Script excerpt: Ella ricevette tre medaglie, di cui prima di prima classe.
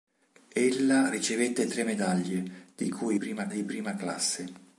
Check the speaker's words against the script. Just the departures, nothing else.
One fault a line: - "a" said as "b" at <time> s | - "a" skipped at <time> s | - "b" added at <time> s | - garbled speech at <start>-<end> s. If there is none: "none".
none